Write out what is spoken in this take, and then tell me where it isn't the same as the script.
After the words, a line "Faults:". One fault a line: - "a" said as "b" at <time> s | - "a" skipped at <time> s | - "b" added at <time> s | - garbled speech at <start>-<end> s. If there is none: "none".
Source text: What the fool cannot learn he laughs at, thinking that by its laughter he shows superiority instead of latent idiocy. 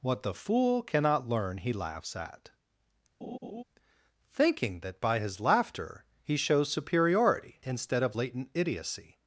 What the fool cannot learn he laughs at, thinking that by his laughter he shows superiority instead of latent idiocy.
Faults:
- "its" said as "his" at 5.2 s